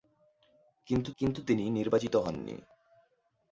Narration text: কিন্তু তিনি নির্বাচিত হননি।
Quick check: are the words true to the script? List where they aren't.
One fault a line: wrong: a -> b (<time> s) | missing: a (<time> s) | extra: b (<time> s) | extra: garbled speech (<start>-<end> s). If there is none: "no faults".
extra: কিন্তু (1.2 s)